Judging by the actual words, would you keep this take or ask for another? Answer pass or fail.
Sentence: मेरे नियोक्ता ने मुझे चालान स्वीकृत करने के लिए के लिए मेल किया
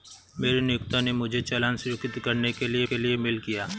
pass